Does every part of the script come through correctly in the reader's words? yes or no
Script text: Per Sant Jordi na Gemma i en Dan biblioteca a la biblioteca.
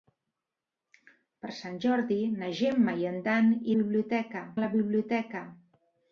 yes